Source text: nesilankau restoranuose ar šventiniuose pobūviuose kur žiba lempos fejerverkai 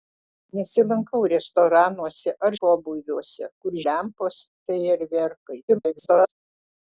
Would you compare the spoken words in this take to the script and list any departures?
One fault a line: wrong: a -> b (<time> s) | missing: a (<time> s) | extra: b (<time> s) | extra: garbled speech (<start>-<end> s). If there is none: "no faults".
missing: šventiniuose (2.6 s)
missing: žiba (3.8 s)
extra: garbled speech (5.7-6.3 s)